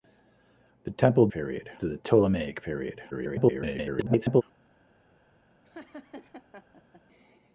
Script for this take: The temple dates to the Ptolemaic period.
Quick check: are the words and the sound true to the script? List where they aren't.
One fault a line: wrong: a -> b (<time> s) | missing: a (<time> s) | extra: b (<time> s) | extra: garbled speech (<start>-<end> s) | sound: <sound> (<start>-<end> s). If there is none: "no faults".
wrong: dates -> period (1.3 s)
extra: garbled speech (3.1-4.4 s)
sound: laugh (5.6-7.0 s)